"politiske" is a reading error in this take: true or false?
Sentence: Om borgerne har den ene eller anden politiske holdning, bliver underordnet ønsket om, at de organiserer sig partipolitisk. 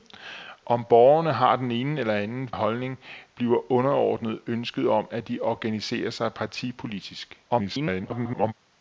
true